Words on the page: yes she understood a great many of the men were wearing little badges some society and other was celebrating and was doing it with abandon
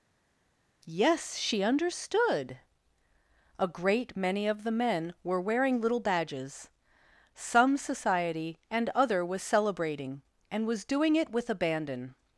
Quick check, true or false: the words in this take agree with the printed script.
true